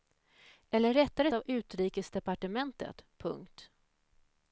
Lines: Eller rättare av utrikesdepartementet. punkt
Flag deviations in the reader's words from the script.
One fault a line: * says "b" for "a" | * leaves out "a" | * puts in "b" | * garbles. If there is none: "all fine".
all fine